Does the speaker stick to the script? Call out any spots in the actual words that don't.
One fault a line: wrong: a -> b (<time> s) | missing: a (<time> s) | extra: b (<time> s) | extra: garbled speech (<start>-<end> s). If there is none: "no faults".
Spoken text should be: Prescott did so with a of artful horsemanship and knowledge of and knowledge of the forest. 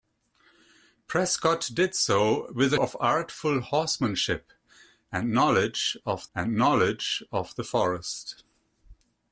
no faults